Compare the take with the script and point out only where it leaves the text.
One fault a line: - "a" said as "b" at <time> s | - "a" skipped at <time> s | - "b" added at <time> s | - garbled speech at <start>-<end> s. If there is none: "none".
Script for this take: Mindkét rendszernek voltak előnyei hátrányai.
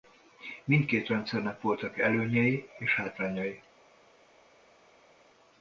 - "és" added at 2.8 s